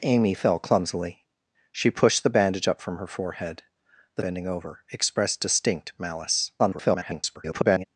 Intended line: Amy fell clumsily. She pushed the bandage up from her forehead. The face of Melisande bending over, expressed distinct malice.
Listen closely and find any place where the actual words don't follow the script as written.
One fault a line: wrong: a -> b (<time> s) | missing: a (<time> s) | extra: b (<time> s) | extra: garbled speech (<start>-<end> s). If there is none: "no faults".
missing: face of Melisande (4.2 s)
extra: garbled speech (6.6-7.8 s)